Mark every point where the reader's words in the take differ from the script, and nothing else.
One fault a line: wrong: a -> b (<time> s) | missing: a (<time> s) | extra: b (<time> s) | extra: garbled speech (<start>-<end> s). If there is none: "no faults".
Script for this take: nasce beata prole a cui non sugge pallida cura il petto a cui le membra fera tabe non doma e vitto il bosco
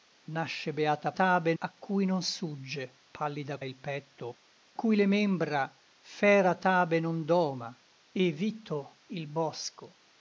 wrong: prole -> tabe (1.1 s)
missing: cura (3.6 s)
missing: a (4.4 s)